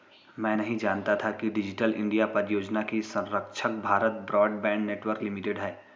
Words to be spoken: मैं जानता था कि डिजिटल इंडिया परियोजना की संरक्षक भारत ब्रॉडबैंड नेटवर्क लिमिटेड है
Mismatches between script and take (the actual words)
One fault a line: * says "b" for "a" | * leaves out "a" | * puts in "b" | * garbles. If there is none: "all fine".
* puts in "नहीं"